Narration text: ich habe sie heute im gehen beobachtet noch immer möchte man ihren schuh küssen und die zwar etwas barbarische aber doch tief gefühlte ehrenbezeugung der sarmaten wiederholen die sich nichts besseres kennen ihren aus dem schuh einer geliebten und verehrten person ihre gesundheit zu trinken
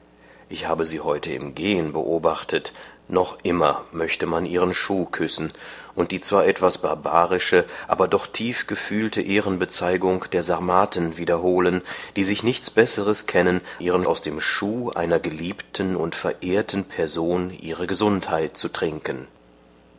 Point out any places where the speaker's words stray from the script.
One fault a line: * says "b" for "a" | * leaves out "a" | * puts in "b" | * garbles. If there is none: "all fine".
all fine